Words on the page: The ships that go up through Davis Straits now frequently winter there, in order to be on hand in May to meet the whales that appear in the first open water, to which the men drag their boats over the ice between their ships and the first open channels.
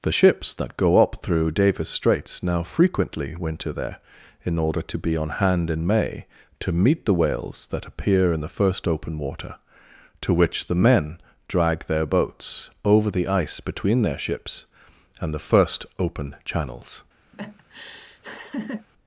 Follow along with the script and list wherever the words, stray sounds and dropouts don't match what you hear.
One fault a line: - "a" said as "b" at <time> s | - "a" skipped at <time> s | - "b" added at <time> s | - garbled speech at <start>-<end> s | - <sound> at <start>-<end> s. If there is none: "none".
- laugh at 17.3-18.9 s